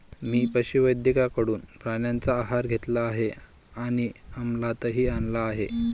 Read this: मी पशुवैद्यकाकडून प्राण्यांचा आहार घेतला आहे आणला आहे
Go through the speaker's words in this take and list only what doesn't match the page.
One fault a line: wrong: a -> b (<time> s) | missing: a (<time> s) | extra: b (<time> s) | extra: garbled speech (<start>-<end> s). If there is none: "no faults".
extra: आणि अमलातही (3.8 s)